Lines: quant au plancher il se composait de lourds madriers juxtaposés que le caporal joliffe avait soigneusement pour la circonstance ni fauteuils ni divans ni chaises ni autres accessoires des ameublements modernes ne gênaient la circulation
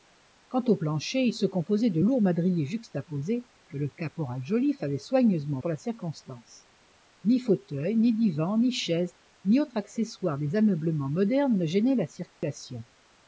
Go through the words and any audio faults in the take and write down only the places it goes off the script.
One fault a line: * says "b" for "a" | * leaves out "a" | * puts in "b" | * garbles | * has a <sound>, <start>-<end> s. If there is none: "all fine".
* has a dropout, 12.3-12.4 s